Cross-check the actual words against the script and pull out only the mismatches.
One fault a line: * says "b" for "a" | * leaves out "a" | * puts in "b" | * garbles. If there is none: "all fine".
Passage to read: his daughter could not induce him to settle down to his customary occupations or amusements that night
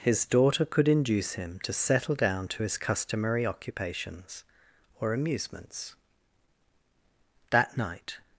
* leaves out "not"